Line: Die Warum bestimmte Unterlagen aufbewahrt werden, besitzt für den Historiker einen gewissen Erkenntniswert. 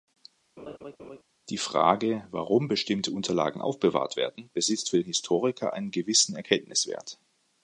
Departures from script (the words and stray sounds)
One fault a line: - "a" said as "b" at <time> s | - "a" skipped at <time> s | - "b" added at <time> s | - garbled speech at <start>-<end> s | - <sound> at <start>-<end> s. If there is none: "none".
- laugh at 0.6-1.2 s
- "Frage" added at 1.6 s